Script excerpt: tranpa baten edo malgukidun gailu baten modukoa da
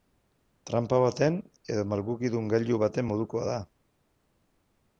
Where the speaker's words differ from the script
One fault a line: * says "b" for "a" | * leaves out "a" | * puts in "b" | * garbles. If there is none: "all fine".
all fine